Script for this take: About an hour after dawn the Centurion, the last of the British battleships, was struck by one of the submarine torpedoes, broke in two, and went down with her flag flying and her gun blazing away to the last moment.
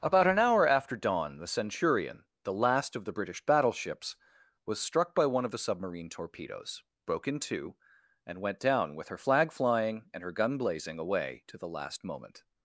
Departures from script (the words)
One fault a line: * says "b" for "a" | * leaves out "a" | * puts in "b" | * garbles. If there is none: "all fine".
all fine